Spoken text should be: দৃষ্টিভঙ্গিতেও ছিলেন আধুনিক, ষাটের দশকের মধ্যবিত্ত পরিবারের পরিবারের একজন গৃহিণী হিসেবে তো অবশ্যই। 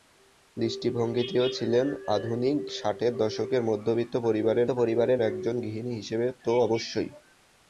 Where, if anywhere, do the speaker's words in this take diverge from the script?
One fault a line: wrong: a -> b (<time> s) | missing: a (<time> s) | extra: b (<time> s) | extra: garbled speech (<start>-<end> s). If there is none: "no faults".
no faults